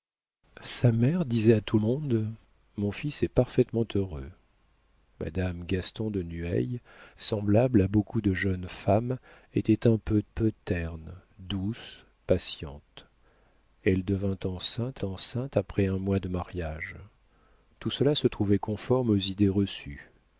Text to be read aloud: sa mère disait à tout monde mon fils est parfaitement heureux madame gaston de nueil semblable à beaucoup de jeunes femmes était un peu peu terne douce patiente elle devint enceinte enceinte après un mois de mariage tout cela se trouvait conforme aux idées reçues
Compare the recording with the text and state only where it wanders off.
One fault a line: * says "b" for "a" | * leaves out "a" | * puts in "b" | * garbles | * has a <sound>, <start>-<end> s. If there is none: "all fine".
all fine